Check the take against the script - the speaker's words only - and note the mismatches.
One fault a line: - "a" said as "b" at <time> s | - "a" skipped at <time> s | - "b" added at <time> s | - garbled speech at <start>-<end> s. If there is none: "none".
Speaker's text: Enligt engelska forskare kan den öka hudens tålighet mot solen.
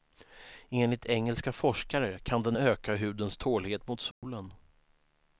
none